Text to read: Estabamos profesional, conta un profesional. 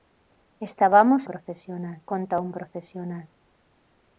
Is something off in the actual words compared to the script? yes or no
no